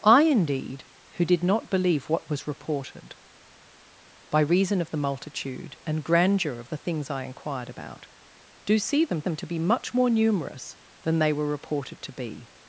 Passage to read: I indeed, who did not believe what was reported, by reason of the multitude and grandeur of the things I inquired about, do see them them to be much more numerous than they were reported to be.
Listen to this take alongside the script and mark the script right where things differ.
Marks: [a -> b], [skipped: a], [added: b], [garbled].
I indeed, who did not believe what was reported, by reason of the multitude and grandeur of the things I inquired about, do see them them to be much more numerous than they were reported to be.